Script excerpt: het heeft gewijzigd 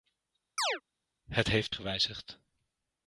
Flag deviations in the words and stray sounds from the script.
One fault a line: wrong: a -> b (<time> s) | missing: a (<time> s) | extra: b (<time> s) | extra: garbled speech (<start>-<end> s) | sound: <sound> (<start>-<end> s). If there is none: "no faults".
sound: chirp (0.6-0.8 s)